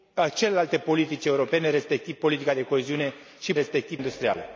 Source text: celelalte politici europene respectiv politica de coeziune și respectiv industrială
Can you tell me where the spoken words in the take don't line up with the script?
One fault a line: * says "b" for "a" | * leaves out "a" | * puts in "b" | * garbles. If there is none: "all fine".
all fine